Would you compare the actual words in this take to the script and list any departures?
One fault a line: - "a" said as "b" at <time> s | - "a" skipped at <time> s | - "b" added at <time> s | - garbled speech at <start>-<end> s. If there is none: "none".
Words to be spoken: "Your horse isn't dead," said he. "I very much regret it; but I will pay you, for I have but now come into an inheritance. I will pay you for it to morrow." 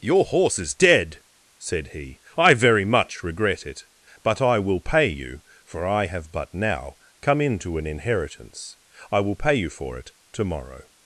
- "isn't" said as "is" at 0.6 s